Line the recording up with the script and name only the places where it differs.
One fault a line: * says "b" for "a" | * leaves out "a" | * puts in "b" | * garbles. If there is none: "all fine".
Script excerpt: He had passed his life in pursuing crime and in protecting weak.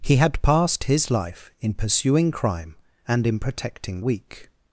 all fine